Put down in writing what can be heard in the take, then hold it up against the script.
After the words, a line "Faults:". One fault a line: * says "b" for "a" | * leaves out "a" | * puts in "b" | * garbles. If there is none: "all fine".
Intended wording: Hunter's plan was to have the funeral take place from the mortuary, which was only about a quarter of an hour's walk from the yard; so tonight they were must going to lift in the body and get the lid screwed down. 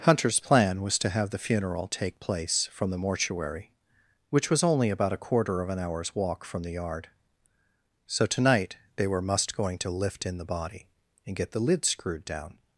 Hunter's plan was to have the funeral take place from the mortuary, which was only about a quarter of an hour's walk from the yard; so tonight they were must going to lift in the body and get the lid screwed down.
Faults:
all fine